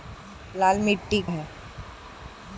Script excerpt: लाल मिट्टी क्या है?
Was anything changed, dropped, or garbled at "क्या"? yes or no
yes